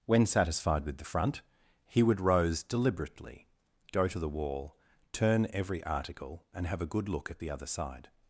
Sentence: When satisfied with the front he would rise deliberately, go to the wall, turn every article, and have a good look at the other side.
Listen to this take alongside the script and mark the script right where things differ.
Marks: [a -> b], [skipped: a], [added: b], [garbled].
When satisfied with the front he would [rise -> rose] deliberately, go to the wall, turn every article, and have a good look at the other side.